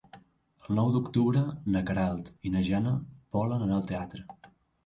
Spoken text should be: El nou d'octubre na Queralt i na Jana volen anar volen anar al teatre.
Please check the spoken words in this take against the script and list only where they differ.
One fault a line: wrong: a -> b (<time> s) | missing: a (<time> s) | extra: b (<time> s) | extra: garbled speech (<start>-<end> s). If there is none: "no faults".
missing: volen anar (3.8 s)